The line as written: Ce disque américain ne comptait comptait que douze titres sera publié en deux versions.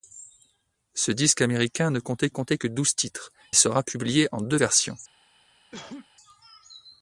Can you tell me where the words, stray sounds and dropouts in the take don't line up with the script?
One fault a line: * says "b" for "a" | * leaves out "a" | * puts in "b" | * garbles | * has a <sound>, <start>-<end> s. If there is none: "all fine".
* has a cough, 5.7-6.1 s